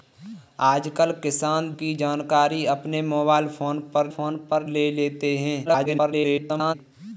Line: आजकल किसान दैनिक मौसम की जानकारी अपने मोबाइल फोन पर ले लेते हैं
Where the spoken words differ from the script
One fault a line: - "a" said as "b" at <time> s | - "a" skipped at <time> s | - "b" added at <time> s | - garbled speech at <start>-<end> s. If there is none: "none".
- "दैनिक मौसम" skipped at 1.7 s
- "फोन पर" added at 4.1 s
- garbled speech at 5.7-6.7 s